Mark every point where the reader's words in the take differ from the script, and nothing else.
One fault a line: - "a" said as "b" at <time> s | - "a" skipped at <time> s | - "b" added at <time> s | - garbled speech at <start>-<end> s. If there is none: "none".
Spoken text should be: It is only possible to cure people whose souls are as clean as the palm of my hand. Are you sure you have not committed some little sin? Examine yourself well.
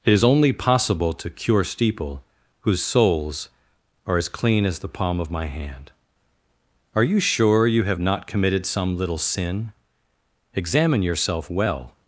- "people" said as "steeple" at 1.6 s